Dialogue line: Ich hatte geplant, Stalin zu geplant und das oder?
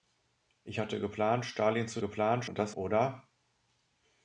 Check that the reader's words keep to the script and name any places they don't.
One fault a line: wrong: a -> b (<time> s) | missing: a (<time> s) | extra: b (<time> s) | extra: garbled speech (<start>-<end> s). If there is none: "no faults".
no faults